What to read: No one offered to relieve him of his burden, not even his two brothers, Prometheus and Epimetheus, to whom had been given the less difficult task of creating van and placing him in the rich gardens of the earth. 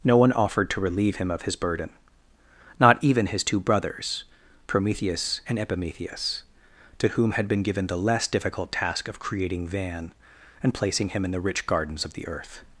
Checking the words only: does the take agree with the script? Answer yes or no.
yes